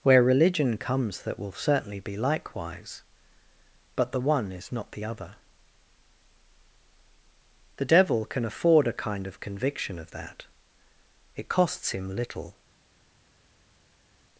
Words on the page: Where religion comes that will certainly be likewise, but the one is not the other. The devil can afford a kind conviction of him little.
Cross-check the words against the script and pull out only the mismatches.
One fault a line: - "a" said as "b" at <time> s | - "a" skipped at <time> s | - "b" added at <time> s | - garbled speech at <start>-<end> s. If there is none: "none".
- "of" added at 9.3 s
- "that It costs" added at 10.1 s